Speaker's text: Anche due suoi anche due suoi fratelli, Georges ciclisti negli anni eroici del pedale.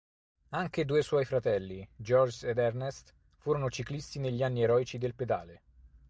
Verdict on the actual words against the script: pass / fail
fail